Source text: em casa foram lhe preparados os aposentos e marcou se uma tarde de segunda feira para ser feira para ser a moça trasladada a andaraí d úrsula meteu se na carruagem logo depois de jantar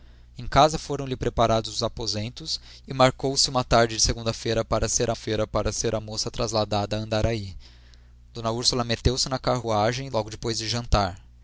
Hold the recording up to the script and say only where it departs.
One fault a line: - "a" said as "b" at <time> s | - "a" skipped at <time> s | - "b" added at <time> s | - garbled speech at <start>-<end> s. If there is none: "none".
none